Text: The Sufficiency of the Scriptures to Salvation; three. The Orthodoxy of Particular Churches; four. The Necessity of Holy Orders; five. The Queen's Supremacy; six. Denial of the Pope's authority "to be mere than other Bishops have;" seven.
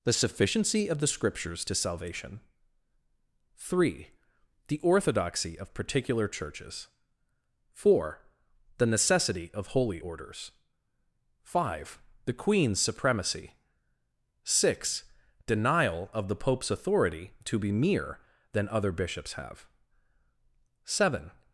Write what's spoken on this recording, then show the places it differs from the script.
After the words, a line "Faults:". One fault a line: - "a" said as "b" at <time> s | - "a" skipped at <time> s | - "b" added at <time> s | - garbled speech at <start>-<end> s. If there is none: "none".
The Sufficiency of the Scriptures to Salvation; three. The Orthodoxy of Particular Churches; four. The Necessity of Holy Orders; five. The Queen's Supremacy; six. Denial of the Pope's authority "to be mere than other Bishops have;" seven.
Faults:
none